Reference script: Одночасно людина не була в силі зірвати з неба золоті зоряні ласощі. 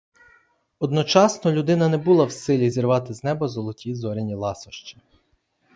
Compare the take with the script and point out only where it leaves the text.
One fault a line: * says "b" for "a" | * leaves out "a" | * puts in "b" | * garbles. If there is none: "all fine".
all fine